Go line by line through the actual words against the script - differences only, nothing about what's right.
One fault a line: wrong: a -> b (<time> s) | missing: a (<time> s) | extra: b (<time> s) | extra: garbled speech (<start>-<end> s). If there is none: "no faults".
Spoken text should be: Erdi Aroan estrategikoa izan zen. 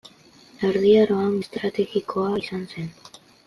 no faults